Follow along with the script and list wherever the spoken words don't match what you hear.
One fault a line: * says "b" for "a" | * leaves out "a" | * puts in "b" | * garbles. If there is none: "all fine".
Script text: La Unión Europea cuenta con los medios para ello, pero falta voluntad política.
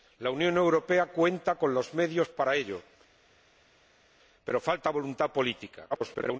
* garbles